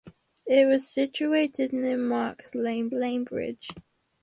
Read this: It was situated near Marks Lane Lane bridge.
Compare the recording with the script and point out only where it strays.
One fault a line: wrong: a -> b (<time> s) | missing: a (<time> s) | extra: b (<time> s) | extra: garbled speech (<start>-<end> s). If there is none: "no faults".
no faults